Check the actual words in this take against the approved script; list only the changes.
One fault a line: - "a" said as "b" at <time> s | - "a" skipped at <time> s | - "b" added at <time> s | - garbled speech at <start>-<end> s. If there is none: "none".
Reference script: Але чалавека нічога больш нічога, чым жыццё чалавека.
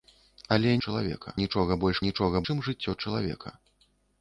none